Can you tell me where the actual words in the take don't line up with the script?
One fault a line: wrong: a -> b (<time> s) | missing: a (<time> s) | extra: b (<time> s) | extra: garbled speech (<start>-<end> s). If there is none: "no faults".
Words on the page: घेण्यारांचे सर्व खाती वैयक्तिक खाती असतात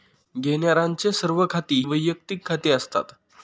no faults